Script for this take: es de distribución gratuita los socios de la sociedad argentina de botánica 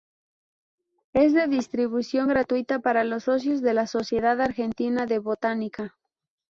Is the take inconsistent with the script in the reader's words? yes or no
yes